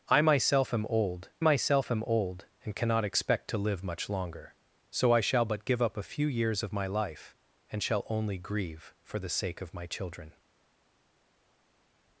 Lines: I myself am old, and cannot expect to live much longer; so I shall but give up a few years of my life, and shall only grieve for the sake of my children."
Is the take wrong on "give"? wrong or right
right